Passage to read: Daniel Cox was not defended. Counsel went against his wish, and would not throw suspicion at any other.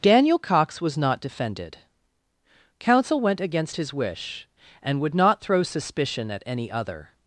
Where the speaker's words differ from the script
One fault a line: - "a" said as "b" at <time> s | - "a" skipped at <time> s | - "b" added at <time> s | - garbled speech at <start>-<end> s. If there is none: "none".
none